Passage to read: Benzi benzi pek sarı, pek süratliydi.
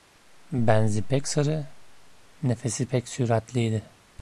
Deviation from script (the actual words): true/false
true